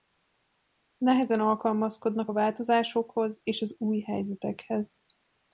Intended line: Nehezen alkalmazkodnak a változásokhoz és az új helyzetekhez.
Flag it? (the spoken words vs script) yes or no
no